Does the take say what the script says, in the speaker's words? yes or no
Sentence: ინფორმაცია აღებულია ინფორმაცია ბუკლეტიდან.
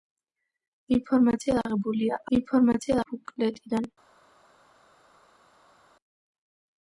yes